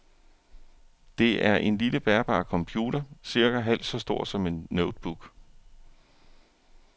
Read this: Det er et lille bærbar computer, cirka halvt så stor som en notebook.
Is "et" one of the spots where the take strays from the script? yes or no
yes